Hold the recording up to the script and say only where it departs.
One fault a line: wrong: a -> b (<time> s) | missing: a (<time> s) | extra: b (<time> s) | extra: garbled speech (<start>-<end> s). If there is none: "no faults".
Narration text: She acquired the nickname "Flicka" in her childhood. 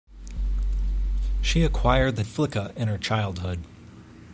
missing: nickname (2.2 s)